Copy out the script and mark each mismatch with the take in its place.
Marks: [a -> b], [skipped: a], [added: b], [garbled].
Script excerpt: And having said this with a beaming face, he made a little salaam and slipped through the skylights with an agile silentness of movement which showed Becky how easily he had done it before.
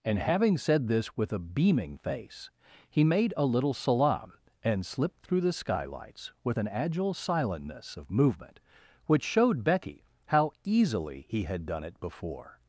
And having said this with a beaming face, he made a little salaam and slipped through the skylights with an agile silentness of movement which showed Becky how easily he had done it before.